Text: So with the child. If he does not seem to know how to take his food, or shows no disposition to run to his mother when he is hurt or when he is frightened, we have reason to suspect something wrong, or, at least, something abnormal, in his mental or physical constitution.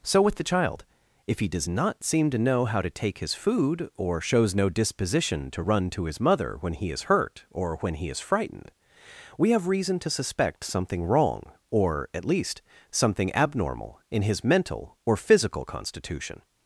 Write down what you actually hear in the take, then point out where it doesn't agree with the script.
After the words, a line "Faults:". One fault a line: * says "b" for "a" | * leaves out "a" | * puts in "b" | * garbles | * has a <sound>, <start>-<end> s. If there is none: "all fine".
So with the child. If he does not seem to know how to take his food, or shows no disposition to run to his mother when he is hurt or when he is frightened, we have reason to suspect something wrong, or, at least, something abnormal, in his mental or physical constitution.
Faults:
all fine